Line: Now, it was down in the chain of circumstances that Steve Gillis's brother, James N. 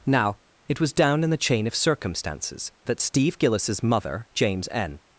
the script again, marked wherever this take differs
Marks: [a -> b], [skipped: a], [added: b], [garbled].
Now, it was down in the chain of circumstances that Steve Gillis's [brother, -> mother] James N.